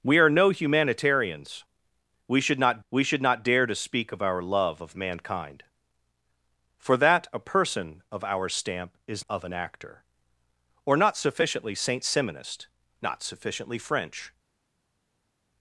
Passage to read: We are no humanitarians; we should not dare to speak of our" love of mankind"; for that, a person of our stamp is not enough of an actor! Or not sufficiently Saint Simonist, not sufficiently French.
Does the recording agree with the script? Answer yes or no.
no